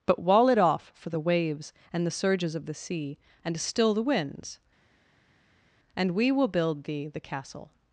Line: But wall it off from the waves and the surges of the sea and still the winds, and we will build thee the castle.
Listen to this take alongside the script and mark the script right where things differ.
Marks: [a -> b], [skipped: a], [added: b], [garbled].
But wall it off [from -> for] the waves and the surges of the sea and still the winds, and we will build thee the castle.